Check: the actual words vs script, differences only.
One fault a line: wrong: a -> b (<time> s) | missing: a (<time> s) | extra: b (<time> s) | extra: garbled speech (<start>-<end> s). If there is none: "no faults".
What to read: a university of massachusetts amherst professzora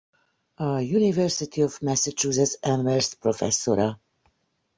no faults